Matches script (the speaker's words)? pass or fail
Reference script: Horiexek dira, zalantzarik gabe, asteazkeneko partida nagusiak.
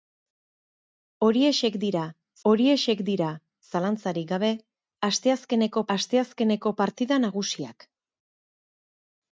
fail